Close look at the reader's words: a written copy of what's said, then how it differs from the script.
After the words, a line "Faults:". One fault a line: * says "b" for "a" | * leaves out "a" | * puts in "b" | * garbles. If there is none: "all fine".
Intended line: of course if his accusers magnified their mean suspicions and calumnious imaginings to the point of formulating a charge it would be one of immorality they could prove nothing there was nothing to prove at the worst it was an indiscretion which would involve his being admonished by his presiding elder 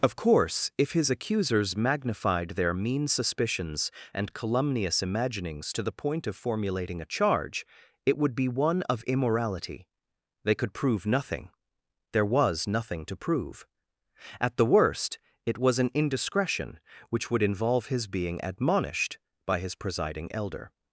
of course if his accusers magnified their mean suspicions and calumnious imaginings to the point of formulating a charge it would be one of immorality they could prove nothing there was nothing to prove at the worst it was an indiscretion which would involve his being admonished by his presiding elder
Faults:
all fine